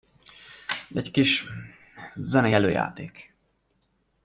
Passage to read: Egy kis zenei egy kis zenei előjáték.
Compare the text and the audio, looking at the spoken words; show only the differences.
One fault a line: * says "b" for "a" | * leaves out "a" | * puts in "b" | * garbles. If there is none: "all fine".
* leaves out "egy kis zenei"